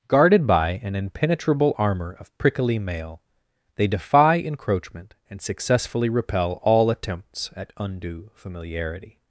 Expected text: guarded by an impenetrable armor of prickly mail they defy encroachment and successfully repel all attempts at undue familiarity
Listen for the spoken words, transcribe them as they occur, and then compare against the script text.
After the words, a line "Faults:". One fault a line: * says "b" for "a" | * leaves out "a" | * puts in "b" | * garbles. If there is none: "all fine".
guarded by an impenetrable armor of prickly mail they defy encroachment and successfully repel all attempts at undue familiarity
Faults:
all fine